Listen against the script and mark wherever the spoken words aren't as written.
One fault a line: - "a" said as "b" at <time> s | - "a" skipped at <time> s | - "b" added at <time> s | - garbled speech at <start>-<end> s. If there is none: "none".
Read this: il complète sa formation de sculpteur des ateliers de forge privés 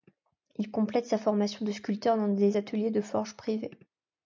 - "dans" added at 2.2 s